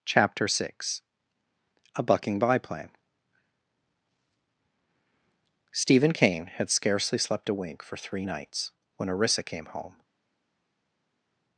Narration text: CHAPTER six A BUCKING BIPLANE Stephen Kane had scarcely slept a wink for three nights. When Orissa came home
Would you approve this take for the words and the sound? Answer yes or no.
yes